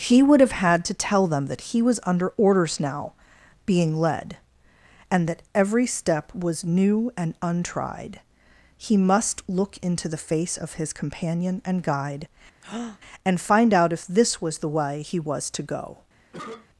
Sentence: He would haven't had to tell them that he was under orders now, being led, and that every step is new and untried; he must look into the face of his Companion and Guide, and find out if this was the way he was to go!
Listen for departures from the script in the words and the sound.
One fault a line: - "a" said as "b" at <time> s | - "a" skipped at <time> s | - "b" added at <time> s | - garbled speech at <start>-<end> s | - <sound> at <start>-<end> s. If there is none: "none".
- "haven't" said as "have" at 0.4 s
- "is" said as "was" at 6.3 s
- breath at 12.6-13.0 s
- cough at 16.3-16.7 s